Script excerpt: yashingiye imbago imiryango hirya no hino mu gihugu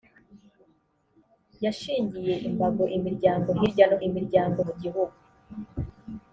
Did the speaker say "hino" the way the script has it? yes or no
no